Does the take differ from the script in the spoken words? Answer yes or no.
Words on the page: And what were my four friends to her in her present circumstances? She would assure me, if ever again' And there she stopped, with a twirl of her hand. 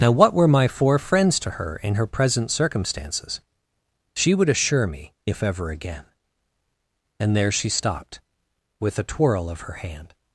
yes